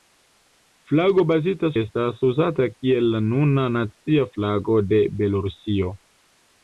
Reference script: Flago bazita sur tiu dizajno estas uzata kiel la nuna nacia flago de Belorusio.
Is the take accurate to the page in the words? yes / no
no